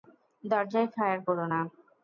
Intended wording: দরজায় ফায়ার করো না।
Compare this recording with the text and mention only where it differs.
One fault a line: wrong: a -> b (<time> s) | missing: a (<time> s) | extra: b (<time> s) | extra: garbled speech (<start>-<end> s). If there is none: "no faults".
no faults